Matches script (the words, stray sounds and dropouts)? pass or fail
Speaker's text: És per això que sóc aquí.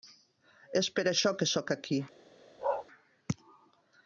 fail